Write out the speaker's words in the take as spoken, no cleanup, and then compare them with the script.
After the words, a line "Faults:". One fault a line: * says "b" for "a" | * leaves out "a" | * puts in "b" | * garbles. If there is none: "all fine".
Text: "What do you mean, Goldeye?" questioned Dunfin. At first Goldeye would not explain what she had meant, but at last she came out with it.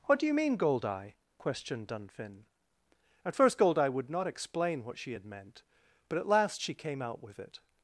"What do you mean, Goldeye?" questioned Dunfin. At first Goldeye would not explain what she had meant, but at last she came out with it.
Faults:
all fine